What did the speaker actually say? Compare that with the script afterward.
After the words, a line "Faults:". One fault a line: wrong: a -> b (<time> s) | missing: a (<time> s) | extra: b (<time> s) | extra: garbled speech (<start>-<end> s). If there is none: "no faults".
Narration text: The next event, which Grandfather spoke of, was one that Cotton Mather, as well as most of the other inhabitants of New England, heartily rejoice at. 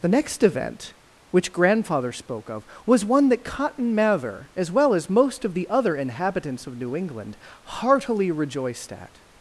The next event, which Grandfather spoke of, was one that Cotton Mather, as well as most of the other inhabitants of New England, heartily rejoiced at.
Faults:
wrong: rejoice -> rejoiced (8.3 s)